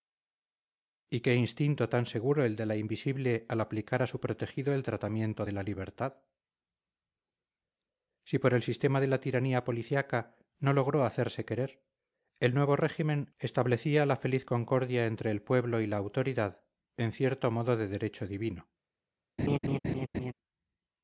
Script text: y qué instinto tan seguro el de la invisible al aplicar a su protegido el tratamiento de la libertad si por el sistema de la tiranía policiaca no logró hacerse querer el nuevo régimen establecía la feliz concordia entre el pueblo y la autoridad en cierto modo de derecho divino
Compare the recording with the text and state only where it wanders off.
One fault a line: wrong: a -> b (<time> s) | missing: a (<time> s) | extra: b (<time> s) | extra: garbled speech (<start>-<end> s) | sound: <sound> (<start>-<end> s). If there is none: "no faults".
sound: laugh (19.4-20.3 s)